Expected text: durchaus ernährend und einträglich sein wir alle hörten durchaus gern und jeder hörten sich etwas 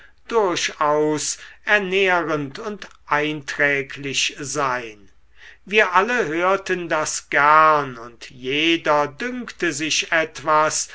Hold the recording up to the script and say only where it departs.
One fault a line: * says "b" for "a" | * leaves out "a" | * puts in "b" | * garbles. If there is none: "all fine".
* says "das" for "durchaus"
* says "dünkte" for "hörten"